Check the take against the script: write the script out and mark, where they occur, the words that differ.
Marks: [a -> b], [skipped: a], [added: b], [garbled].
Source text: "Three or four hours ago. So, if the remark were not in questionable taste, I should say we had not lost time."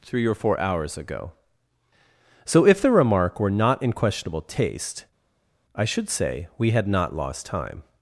"Three or four hours ago. So, if the remark were not in questionable taste, I should say we had not lost time."